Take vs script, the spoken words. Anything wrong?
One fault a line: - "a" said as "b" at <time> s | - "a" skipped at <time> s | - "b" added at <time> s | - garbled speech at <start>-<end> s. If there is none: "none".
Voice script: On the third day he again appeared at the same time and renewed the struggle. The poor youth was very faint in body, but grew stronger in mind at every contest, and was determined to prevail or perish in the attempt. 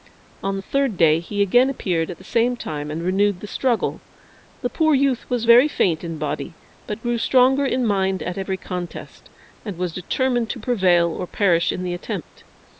none